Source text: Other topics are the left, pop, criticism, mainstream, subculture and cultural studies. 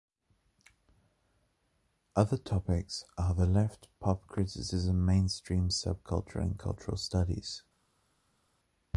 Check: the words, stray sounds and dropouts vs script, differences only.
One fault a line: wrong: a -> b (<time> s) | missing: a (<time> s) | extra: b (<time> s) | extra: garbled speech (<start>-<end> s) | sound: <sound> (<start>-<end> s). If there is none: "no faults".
no faults